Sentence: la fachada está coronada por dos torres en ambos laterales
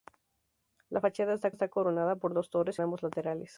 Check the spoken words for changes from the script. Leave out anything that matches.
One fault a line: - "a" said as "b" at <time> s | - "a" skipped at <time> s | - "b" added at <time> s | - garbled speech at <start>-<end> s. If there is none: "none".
- "está" added at 1.5 s
- "en" skipped at 2.8 s